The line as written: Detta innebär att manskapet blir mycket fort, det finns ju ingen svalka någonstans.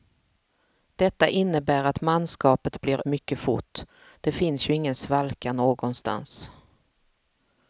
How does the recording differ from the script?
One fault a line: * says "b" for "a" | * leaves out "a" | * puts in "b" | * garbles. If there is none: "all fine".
all fine